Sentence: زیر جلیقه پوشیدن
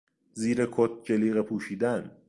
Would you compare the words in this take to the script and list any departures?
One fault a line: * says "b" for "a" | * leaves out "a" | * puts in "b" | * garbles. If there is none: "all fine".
* puts in "کت"